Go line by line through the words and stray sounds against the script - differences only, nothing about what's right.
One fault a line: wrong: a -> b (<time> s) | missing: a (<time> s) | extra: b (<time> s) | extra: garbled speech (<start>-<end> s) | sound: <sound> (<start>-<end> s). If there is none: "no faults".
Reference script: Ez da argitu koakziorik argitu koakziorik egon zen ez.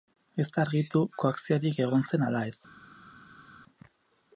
missing: argitu koakziorik (1.8 s)
extra: ala (2.3 s)